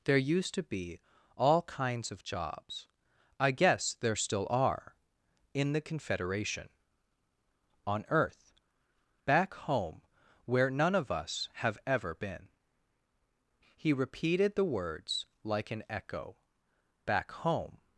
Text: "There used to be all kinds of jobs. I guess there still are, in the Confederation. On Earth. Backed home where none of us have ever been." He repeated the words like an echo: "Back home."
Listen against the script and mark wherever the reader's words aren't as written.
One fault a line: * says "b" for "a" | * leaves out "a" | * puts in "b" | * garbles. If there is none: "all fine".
* says "Back" for "Backed"